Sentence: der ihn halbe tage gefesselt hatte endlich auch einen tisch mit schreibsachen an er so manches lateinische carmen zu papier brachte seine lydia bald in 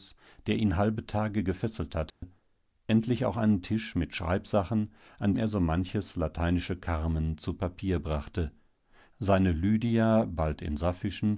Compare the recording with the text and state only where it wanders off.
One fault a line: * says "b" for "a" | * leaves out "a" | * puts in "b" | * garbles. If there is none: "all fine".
all fine